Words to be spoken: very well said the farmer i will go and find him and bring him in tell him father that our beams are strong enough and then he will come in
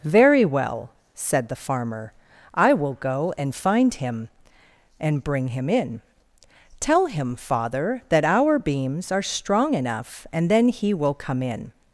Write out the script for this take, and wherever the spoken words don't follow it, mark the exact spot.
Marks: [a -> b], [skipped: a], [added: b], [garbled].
very well said the farmer i will go and find him and bring him in tell him father that our beams are strong enough and then he will come in